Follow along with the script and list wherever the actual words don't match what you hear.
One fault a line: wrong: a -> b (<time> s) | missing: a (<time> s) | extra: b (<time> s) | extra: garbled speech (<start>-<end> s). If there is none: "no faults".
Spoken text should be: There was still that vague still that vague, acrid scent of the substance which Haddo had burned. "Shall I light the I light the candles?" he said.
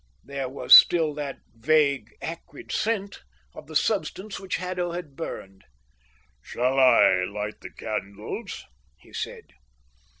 missing: still that vague (2.1 s)
missing: I light the (7.7 s)